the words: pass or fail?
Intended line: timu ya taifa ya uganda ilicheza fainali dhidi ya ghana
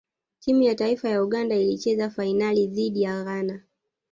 pass